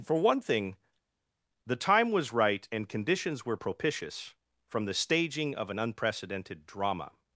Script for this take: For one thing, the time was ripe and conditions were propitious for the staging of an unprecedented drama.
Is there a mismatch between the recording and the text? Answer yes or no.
yes